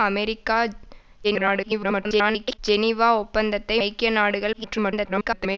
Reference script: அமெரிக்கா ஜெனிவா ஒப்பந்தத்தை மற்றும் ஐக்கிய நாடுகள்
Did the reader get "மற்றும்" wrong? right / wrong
wrong